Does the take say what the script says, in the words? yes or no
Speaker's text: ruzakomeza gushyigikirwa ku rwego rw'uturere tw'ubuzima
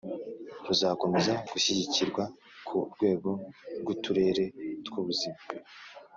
yes